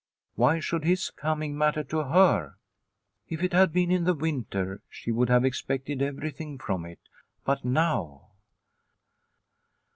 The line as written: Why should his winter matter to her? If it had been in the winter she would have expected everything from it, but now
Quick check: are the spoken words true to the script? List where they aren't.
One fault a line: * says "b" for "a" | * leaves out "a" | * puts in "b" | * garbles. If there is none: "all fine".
* says "coming" for "winter"